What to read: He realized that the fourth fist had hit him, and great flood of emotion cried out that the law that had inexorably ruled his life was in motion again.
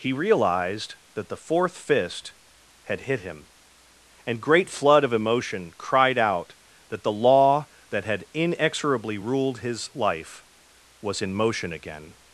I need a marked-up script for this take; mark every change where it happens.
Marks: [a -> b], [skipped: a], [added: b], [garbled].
He realized that the fourth fist had hit him, and great flood of emotion cried out that the law that had inexorably ruled his life was in motion again.